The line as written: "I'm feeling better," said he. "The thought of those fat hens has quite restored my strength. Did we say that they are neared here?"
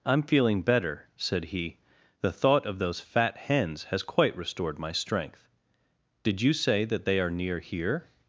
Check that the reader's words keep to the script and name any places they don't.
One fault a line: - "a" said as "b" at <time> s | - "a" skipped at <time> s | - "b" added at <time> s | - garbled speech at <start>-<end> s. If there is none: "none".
- "we" said as "you" at 6.4 s
- "neared" said as "near" at 7.3 s